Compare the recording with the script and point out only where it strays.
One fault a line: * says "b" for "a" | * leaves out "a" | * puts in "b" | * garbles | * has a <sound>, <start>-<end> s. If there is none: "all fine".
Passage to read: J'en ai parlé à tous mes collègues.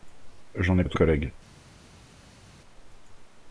* leaves out "parlé"
* leaves out "mes"